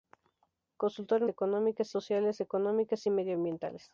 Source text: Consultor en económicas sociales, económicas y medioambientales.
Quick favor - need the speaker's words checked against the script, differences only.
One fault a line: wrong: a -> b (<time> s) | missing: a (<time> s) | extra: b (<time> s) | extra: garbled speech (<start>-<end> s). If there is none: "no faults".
no faults